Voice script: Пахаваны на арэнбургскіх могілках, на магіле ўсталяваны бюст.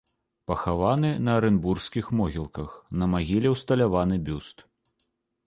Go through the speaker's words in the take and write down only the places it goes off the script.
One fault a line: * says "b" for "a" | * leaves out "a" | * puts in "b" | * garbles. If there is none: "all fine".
all fine